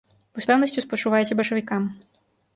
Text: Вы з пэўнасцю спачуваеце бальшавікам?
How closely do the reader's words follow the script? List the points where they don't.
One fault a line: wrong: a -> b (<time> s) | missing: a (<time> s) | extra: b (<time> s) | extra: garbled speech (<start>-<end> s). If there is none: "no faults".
no faults